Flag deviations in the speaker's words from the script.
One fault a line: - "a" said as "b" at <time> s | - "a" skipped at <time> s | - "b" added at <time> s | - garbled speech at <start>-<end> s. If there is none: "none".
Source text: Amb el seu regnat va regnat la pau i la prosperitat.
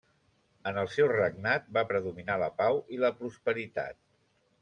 - "Amb" said as "En" at 0.7 s
- "regnat" said as "predominar" at 1.9 s